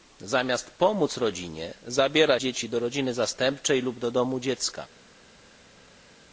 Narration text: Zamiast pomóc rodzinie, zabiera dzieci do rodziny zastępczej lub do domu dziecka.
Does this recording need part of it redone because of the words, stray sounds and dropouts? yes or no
no